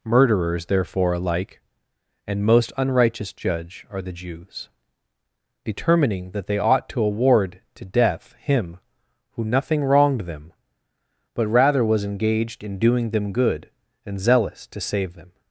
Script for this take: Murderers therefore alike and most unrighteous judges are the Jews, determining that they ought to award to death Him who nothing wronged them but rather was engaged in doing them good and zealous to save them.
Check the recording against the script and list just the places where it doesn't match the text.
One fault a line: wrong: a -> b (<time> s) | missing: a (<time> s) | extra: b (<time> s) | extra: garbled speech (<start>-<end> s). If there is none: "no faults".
wrong: judges -> judge (3.3 s)